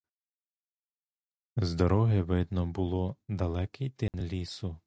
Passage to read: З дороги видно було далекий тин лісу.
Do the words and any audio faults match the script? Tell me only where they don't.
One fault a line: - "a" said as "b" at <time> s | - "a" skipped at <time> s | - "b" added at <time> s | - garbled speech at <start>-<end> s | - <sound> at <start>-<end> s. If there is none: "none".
- dropout at 4.1-4.1 s